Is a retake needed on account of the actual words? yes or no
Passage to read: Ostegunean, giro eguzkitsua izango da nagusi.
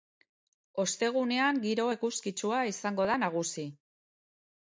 no